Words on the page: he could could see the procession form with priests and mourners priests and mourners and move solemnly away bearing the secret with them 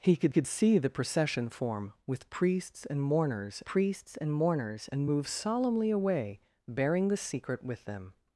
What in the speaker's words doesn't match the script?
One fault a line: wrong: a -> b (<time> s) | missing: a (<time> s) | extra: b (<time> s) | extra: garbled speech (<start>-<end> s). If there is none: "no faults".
no faults